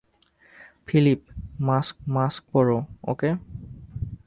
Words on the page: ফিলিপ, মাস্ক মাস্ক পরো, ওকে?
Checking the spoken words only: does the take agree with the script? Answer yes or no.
yes